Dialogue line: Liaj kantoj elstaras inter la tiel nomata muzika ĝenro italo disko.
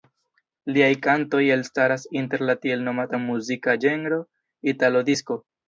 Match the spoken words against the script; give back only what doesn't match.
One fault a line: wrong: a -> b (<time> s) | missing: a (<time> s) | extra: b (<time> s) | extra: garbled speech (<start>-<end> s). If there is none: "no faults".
no faults